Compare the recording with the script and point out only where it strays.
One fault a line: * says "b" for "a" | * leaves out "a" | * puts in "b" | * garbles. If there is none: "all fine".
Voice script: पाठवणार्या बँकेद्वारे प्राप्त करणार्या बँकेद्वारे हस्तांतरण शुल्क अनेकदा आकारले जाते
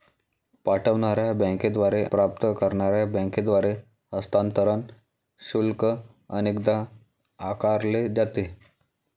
all fine